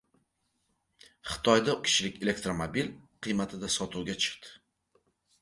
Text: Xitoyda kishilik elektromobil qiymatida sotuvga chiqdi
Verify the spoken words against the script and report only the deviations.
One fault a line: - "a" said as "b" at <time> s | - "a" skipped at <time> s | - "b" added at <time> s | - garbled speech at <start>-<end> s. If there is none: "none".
none